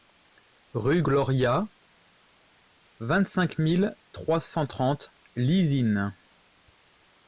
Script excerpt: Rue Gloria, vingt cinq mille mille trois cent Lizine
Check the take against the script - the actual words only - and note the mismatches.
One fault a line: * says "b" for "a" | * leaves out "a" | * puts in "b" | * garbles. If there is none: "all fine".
* leaves out "mille"
* puts in "trente"